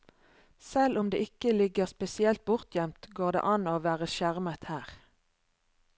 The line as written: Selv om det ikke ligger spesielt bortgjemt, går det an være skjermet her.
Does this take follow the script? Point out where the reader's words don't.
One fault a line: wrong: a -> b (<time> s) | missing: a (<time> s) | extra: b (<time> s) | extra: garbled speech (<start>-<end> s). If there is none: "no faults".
extra: å (3.7 s)